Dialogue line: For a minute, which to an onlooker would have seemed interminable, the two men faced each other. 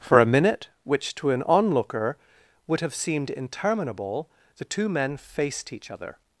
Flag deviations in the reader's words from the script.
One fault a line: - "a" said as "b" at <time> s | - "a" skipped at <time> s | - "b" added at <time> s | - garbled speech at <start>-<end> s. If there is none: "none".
none